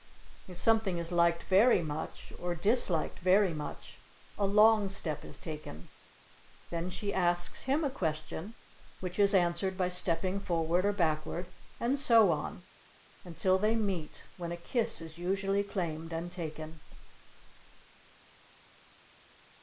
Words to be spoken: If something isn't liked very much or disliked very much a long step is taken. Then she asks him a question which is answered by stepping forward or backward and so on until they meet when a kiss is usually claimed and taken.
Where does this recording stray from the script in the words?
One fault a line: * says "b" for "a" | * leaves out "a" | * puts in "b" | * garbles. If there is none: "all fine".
* says "is" for "isn't"